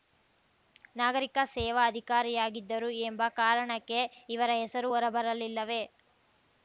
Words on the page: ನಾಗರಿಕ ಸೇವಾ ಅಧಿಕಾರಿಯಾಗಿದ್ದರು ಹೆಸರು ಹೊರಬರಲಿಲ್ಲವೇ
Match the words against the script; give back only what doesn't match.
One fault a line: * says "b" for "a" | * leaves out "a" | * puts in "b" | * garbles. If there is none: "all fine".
* puts in "ಎಂಬ ಕಾರಣಕ್ಕೆ ಇವರ"